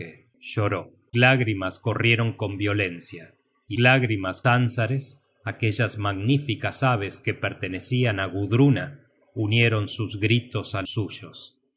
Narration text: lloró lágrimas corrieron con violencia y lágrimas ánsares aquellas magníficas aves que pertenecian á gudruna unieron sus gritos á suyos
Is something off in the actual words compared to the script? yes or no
no